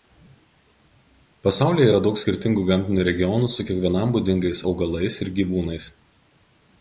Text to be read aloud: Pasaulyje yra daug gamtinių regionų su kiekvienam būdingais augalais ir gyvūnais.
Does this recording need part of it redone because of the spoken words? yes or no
yes